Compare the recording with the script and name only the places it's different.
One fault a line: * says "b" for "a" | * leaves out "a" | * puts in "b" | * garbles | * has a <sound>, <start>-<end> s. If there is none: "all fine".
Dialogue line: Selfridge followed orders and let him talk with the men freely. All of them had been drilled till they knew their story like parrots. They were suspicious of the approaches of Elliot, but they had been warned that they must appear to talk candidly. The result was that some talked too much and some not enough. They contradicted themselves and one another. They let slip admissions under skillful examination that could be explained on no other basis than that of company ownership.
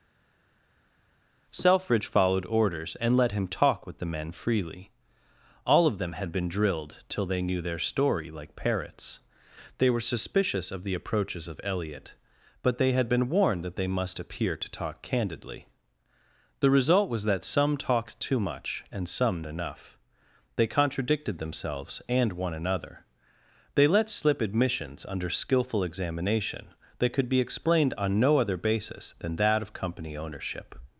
* leaves out "not"